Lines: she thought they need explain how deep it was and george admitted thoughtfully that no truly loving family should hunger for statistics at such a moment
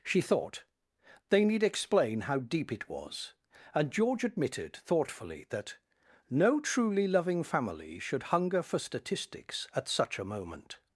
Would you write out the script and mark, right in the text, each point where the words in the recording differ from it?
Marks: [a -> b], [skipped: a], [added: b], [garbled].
she thought they need explain how deep it was and george admitted thoughtfully that no truly loving family should hunger for statistics at such a moment